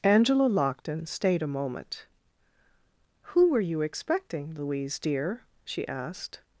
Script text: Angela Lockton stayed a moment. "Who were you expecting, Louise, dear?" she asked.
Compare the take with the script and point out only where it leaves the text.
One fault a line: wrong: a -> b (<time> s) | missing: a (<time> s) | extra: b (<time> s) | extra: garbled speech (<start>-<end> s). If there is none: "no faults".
no faults